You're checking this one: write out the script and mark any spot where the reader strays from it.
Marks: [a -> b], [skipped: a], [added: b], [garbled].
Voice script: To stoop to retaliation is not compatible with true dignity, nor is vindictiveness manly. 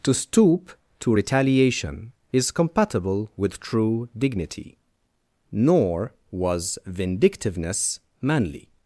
To stoop to retaliation is [skipped: not] compatible with true dignity, nor [is -> was] vindictiveness manly.